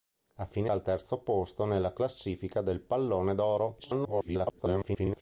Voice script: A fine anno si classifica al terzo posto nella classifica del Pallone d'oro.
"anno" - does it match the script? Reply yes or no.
no